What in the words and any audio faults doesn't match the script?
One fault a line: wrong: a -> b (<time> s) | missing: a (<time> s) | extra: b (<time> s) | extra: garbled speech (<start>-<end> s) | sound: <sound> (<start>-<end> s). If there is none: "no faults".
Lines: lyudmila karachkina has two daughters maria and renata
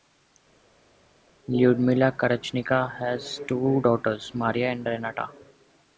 no faults